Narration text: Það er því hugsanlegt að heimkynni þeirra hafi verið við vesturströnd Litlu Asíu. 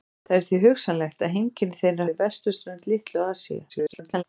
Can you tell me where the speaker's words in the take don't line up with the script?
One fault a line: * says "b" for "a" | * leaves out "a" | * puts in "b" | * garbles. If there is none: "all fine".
* leaves out "hafi verið"
* garbles